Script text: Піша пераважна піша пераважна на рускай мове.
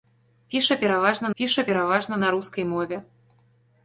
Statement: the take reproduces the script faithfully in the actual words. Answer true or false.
true